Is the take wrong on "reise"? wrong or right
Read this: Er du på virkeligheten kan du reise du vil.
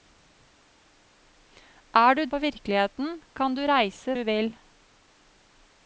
right